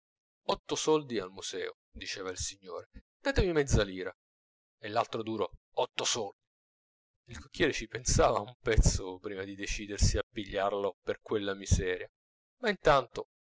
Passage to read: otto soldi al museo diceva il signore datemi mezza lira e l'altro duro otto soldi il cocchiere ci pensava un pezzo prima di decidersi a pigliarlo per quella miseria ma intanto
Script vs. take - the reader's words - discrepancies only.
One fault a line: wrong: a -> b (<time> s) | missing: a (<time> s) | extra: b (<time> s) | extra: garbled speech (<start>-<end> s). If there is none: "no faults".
no faults